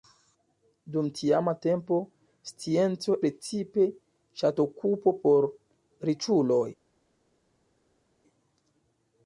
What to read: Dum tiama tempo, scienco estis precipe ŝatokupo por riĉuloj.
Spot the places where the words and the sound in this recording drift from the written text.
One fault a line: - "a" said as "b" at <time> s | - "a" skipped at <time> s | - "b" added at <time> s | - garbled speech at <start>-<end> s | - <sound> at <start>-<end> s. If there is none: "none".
- "estis" skipped at 3.2 s